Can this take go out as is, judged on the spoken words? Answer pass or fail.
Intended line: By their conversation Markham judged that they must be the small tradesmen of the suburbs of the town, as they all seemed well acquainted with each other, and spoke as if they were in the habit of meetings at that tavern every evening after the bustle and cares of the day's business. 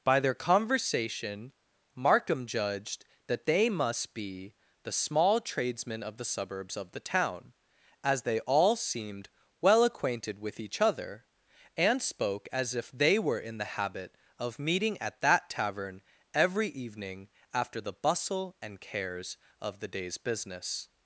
fail